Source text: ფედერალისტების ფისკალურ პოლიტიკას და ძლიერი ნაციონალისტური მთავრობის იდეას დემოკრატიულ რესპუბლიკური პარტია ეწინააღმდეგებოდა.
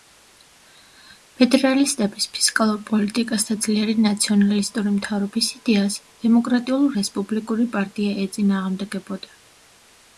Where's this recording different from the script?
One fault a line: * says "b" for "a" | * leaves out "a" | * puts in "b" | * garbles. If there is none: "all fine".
all fine